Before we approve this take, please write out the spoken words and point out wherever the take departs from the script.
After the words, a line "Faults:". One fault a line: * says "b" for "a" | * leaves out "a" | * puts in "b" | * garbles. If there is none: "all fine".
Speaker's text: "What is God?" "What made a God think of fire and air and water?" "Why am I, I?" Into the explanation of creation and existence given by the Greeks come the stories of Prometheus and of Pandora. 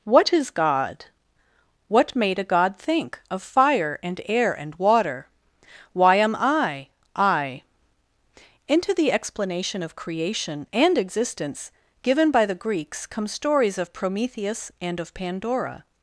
"What is God?" "What made a God think of fire and air and water?" "Why am I, I?" Into the explanation of creation and existence given by the Greeks come stories of Prometheus and of Pandora.
Faults:
* leaves out "the"